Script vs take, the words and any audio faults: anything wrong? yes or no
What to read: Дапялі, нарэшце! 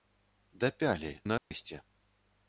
yes